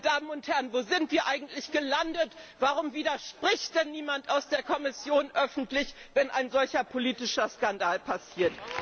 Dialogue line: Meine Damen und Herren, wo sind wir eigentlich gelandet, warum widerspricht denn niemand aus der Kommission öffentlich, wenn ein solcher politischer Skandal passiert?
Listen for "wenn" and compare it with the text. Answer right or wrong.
right